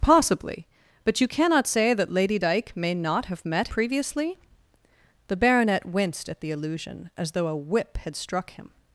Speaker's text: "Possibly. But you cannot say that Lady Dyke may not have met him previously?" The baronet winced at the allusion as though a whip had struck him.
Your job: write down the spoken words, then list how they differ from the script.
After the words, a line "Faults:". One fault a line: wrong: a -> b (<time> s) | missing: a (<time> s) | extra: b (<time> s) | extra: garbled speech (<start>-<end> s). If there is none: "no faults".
"Possibly. But you cannot say that Lady Dyke may not have met previously?" The baronet winced at the allusion as though a whip had struck him.
Faults:
missing: him (3.7 s)